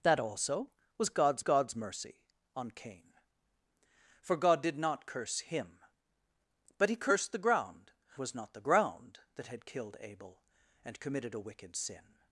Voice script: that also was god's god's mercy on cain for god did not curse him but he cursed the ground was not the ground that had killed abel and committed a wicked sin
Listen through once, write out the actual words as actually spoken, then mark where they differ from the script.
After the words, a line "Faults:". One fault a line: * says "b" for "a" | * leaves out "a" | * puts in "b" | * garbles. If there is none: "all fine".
that also was god's god's mercy on cain for god did not curse him but he cursed the ground was not the ground that had killed abel and committed a wicked sin
Faults:
all fine